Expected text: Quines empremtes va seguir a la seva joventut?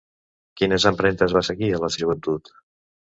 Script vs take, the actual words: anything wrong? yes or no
yes